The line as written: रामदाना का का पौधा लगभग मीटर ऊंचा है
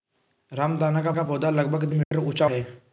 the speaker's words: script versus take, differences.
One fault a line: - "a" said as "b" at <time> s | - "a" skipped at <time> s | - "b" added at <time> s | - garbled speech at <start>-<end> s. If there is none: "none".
none